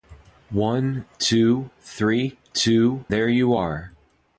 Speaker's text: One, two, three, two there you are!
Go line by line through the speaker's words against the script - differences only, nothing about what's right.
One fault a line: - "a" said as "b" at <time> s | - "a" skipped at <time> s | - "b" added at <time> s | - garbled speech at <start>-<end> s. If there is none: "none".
none